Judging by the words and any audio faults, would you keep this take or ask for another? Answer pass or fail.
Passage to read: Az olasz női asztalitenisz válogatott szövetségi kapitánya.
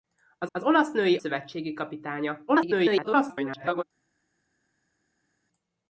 fail